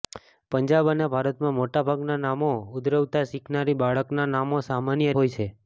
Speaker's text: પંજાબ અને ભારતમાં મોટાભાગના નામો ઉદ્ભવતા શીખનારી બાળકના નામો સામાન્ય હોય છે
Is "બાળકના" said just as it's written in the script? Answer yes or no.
yes